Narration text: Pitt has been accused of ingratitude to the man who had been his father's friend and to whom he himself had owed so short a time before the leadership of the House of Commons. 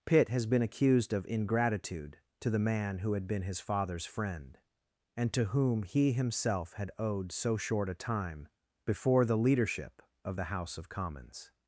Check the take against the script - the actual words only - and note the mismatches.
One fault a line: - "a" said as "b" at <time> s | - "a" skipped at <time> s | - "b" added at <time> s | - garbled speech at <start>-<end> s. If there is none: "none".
none